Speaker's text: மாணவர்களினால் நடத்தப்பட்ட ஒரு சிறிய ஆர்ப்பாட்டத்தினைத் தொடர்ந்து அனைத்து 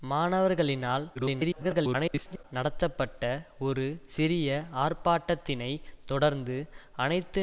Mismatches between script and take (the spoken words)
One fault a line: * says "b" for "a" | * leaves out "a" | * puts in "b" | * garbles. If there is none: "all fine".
* garbles